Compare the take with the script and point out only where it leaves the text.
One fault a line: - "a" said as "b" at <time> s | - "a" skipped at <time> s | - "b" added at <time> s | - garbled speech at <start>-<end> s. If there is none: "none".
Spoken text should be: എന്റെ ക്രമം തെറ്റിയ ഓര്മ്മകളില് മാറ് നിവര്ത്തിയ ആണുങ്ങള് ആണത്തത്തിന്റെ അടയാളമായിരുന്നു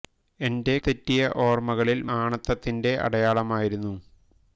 - "ക്രമം" skipped at 0.8 s
- "മാറ് നിവര്ത്തിയ ആണുങ്ങള്" skipped at 2.0 s